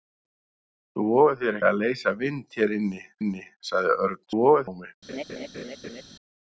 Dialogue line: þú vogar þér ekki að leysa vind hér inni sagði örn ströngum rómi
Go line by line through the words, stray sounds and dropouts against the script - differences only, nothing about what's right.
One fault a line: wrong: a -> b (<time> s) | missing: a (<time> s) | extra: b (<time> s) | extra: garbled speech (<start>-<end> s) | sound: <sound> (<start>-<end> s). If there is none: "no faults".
missing: ekki (1.6 s)
extra: inni (3.2 s)
wrong: ströngum -> vogar (4.4 s)
sound: laugh (5.1-6.0 s)